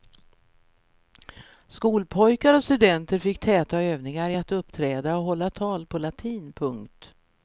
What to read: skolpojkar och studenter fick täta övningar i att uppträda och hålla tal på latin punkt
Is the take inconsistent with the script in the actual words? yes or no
no